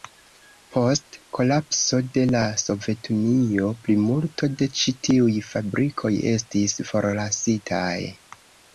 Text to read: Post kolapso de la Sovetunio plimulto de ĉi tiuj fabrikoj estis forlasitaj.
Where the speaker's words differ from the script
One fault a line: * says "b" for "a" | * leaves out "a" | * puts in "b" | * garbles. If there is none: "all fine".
all fine